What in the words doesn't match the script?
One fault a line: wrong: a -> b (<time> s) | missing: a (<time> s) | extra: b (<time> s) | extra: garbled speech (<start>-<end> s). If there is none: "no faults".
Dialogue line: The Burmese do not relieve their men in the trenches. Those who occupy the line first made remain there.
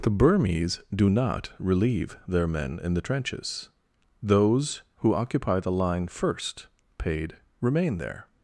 wrong: made -> paid (7.0 s)